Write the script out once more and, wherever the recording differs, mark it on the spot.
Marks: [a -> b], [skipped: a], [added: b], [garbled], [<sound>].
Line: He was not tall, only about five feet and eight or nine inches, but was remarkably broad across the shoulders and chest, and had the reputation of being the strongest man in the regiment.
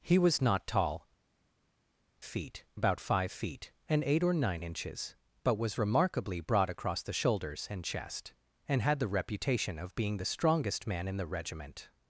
He was not tall, [only -> feet] about five feet and eight or nine inches, but was remarkably broad across the shoulders and chest, and had the reputation of being the strongest man in the regiment.